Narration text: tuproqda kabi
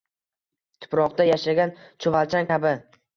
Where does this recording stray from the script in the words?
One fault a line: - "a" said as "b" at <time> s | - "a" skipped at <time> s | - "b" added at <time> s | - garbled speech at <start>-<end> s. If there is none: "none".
- "yashagan chuvalchang" added at 1.3 s